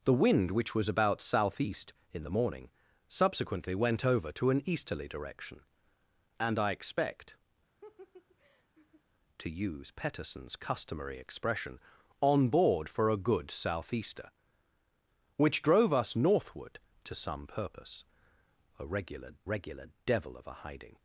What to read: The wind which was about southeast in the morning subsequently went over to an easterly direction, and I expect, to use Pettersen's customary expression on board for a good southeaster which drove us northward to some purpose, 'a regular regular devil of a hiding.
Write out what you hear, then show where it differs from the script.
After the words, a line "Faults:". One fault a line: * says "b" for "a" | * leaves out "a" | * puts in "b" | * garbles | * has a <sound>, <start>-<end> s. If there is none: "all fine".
The wind which was about southeast in the morning subsequently went over to an easterly direction, and I expect, to use Pettersen's customary expression on board for a good southeaster which drove us northward to some purpose, 'a regular regular devil of a hiding.
Faults:
* has a laugh, 7.8-9.0 s